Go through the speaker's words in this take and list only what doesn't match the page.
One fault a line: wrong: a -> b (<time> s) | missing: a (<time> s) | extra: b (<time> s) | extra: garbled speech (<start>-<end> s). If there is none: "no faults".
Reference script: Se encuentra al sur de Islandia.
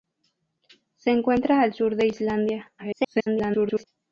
extra: garbled speech (2.8-3.8 s)